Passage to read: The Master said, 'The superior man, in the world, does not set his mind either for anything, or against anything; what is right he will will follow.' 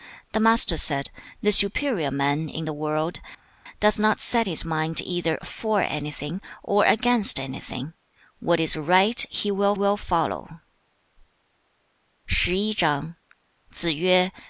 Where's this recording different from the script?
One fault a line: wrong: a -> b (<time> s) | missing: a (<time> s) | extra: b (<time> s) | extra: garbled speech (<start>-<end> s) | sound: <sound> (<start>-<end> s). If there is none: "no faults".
no faults